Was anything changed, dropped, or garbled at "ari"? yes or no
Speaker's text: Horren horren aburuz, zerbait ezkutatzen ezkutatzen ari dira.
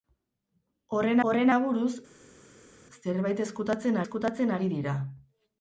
no